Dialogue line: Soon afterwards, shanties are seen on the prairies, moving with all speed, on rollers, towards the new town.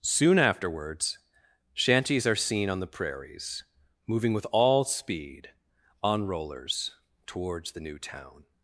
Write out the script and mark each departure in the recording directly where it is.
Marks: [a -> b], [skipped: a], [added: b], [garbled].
Soon afterwards, shanties are seen on the prairies, moving with all speed, on rollers, towards the new town.